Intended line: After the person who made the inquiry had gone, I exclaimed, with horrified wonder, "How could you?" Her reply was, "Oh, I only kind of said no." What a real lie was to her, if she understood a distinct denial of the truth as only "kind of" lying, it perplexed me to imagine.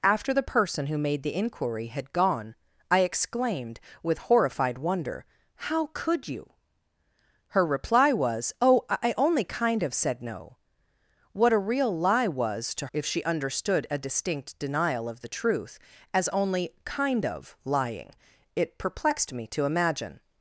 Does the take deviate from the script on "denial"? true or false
false